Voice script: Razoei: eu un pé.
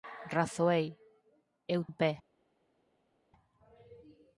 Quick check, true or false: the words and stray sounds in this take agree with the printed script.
true